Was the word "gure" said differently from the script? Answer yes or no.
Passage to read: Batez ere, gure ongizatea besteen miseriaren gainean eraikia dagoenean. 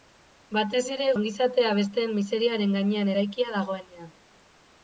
yes